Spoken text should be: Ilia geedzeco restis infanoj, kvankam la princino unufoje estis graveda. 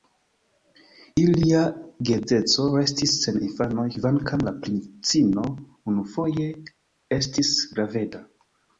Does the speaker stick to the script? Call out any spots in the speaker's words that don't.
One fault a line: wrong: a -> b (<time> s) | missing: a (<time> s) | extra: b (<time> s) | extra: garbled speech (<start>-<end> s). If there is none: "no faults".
extra: sen (3.3 s)